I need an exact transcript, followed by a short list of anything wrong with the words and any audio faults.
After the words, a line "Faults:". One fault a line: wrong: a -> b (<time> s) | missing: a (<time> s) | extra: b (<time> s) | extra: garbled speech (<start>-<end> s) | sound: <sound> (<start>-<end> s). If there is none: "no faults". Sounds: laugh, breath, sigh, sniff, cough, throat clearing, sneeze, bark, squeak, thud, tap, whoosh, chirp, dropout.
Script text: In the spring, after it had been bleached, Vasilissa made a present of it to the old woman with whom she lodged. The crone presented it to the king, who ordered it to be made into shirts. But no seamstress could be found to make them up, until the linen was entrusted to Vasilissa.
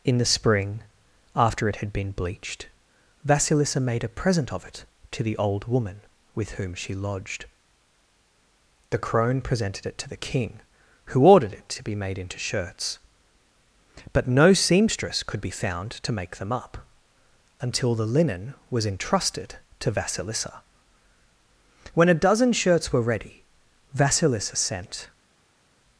In the spring, after it had been bleached, Vasilissa made a present of it to the old woman with whom she lodged. The crone presented it to the king, who ordered it to be made into shirts. But no seamstress could be found to make them up, until the linen was entrusted to Vasilissa. When a dozen shirts were ready, Vasilissa sent
Faults:
extra: When a dozen shirts were ready Vasilissa sent (21.9 s)